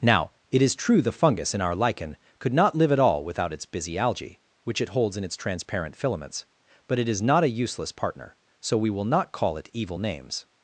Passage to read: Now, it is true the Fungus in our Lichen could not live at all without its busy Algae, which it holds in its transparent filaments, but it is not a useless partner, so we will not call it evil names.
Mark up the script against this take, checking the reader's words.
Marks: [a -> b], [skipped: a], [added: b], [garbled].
Now, it is true the Fungus in our Lichen could not live at all without its busy Algae, which it holds in its transparent filaments, but it is not a useless partner, so we will not call it evil names.